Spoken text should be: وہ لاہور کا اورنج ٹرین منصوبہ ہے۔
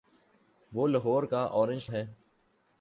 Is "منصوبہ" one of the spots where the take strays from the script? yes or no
yes